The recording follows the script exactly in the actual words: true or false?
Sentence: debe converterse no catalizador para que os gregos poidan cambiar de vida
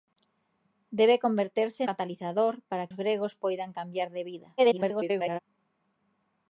false